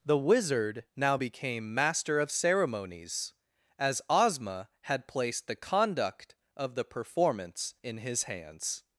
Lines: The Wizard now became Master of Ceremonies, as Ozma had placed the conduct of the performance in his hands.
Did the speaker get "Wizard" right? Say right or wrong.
right